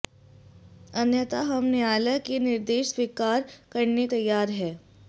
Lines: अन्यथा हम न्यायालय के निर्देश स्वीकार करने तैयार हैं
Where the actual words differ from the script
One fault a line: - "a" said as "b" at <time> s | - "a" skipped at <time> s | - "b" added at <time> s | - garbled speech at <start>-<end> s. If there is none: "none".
none